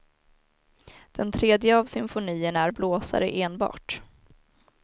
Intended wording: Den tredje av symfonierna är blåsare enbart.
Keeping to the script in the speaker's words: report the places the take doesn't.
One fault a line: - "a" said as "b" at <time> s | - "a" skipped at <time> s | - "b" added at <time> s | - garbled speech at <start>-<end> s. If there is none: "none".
none